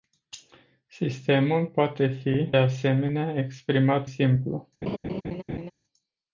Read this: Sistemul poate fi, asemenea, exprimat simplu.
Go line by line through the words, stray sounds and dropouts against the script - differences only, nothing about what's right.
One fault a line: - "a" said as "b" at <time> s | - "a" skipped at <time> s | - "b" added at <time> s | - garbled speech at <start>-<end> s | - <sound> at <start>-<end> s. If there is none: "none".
- laugh at 4.8-5.7 s